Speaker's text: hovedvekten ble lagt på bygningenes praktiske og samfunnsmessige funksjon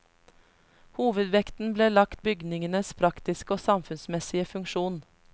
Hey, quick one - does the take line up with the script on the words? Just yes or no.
no